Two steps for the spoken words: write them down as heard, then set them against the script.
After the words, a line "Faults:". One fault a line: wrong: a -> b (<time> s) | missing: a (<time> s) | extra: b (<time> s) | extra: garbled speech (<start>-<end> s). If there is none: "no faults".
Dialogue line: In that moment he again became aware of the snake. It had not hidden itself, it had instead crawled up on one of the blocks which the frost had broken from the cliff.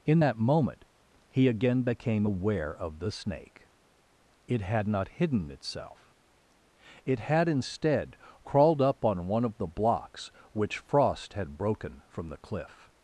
In that moment he again became aware of the snake. It had not hidden itself, it had instead crawled up on one of the blocks which frost had broken from the cliff.
Faults:
missing: the (10.8 s)